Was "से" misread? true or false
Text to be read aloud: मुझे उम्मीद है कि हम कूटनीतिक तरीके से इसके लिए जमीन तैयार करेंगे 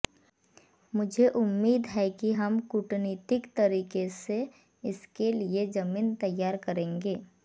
false